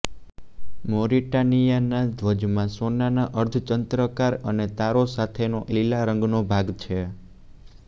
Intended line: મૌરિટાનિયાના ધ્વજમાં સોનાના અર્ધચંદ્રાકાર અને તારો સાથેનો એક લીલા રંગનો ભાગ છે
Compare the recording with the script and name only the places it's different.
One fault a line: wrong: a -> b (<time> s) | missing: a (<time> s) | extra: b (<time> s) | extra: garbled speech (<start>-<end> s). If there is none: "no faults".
missing: એક (5.6 s)